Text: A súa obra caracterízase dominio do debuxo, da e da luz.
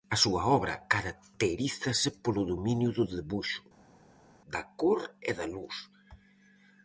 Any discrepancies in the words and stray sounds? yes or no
yes